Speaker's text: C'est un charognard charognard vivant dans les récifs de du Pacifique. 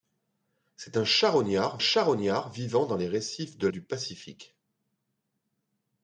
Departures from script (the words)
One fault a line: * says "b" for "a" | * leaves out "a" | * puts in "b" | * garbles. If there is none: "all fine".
all fine